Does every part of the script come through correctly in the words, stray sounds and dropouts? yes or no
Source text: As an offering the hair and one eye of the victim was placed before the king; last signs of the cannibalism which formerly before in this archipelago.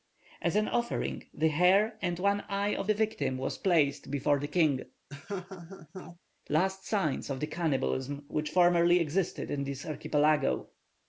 no